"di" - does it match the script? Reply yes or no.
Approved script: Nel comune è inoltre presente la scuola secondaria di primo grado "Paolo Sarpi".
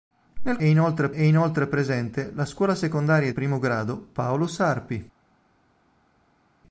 no